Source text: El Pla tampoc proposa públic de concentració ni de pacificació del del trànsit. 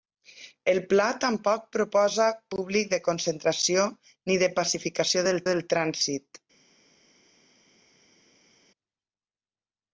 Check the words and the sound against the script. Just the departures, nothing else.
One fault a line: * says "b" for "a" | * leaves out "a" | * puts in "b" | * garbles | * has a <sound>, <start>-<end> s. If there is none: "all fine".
all fine